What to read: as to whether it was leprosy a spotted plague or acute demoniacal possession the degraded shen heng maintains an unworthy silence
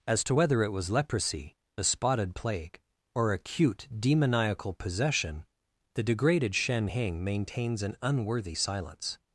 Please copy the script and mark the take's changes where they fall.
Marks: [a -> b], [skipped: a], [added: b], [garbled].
as to whether it was leprosy a spotted plague or acute demoniacal possession the degraded shen heng maintains an unworthy silence